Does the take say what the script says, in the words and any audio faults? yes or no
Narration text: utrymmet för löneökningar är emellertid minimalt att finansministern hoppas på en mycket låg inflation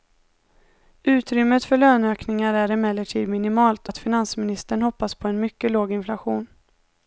yes